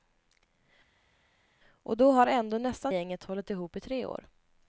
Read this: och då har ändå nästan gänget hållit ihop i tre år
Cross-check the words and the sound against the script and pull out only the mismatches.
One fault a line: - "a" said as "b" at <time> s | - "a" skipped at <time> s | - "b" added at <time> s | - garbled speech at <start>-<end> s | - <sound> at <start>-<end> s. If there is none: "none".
none